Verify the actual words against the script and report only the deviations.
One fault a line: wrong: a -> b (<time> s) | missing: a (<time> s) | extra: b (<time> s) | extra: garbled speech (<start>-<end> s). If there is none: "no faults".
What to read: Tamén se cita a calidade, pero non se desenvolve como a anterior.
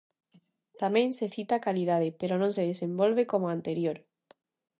no faults